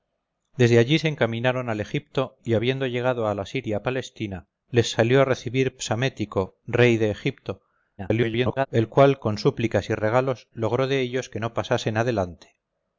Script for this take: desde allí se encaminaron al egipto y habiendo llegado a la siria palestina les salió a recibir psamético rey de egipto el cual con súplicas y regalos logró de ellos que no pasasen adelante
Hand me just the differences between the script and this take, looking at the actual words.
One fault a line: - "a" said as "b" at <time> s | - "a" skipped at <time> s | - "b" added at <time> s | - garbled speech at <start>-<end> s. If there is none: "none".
- garbled speech at 8.0-8.7 s